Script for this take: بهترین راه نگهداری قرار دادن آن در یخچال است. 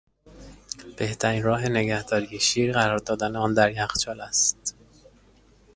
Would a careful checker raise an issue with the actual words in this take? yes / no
yes